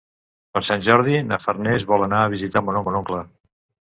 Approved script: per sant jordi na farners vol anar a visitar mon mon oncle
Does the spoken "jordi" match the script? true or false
true